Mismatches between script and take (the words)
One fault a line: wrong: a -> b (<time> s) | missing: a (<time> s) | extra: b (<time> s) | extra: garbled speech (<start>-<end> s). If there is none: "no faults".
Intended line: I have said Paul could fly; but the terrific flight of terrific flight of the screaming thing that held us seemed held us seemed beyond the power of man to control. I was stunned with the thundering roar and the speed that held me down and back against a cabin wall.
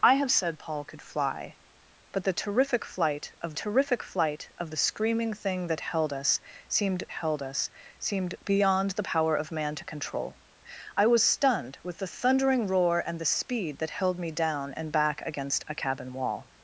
no faults